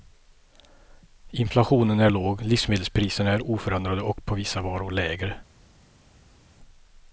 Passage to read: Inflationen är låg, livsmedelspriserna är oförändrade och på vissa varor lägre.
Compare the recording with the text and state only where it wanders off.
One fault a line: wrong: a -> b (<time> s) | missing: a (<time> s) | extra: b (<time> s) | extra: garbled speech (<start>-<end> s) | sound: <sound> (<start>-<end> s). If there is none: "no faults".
no faults